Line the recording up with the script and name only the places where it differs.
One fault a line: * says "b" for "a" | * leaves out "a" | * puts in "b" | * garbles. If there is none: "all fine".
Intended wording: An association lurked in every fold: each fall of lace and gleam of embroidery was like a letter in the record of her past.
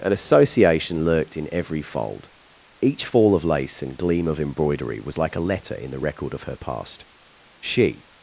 * puts in "She"